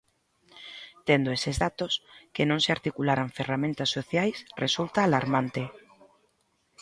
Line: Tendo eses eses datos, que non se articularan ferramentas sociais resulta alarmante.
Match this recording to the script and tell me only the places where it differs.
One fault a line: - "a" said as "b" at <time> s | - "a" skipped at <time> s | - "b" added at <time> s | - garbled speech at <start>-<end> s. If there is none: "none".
- "eses" skipped at 1.6 s